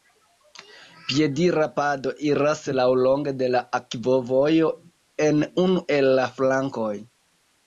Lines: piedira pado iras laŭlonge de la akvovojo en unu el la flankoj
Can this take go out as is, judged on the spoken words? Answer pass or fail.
pass